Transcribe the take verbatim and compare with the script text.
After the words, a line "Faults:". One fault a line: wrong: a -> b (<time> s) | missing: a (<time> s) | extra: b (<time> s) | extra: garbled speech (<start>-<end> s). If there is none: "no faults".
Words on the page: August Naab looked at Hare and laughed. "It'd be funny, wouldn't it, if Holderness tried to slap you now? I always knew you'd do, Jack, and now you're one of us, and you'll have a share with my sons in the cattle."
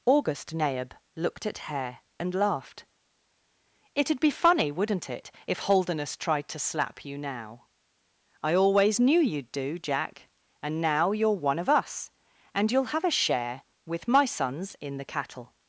August Naab looked at Hare and laughed. "It'd be funny, wouldn't it, if Holderness tried to slap you now? I always knew you'd do, Jack, and now you're one of us, and you'll have a share with my sons in the cattle."
Faults:
no faults